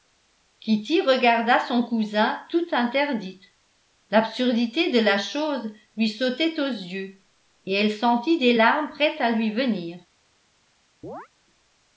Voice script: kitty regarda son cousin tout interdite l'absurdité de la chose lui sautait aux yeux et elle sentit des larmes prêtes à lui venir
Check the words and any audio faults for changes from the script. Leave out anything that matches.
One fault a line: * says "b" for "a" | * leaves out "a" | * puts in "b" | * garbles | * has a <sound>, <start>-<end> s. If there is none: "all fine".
* has a chirp, 11.0-11.3 s